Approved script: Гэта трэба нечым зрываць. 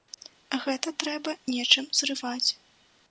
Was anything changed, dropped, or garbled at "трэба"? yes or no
no